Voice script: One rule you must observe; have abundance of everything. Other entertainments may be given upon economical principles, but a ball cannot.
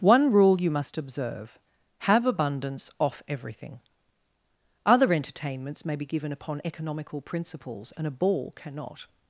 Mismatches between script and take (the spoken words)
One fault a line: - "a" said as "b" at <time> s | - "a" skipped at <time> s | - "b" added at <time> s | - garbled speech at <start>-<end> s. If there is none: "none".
- "of" said as "off" at 3.0 s
- "but" said as "and" at 8.0 s